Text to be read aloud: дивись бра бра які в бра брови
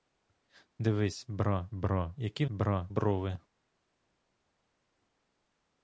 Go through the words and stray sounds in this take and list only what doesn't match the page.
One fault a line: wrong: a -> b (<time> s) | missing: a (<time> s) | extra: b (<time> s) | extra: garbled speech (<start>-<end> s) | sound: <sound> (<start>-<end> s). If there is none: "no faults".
no faults